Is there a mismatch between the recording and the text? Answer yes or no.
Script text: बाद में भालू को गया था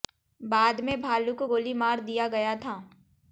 yes